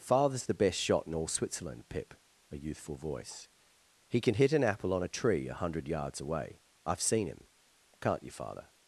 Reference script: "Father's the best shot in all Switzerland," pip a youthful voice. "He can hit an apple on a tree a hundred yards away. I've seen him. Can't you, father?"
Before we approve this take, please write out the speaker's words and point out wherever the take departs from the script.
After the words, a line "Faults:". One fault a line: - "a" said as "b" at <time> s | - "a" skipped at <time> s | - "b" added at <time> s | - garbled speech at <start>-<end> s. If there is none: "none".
"Father's the best shot in all Switzerland," pip a youthful voice. "He can hit an apple on a tree a hundred yards away. I've seen him. Can't you, father?"
Faults:
none